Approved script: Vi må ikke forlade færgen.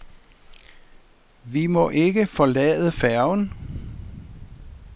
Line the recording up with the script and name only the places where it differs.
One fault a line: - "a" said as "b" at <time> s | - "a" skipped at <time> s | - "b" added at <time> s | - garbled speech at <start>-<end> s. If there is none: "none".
none